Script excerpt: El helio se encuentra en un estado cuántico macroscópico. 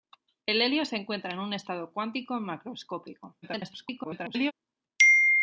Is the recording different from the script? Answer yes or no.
yes